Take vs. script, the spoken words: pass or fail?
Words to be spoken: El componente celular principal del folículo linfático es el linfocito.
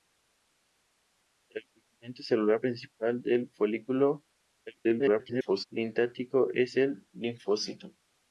fail